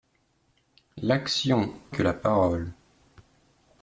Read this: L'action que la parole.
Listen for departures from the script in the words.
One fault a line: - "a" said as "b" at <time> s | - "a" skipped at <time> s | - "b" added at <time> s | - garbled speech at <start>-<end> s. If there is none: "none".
none